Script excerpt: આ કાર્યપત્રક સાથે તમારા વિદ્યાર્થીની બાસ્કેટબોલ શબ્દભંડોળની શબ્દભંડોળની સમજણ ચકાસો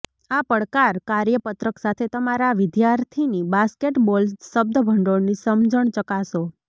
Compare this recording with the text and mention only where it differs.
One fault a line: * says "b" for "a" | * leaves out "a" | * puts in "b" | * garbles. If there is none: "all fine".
* puts in "પડકાર"
* leaves out "શબ્દભંડોળની"